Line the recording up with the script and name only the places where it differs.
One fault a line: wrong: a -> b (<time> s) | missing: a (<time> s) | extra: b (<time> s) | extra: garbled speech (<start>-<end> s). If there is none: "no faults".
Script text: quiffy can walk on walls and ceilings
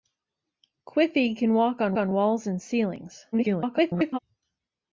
extra: on (2.0 s)
extra: garbled speech (3.3-4.2 s)